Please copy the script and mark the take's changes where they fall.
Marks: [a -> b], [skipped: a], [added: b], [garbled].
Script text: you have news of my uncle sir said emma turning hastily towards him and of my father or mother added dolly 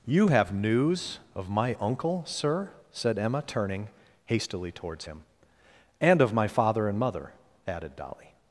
you have news of my uncle sir said emma turning hastily towards him and of my father [or -> and] mother added dolly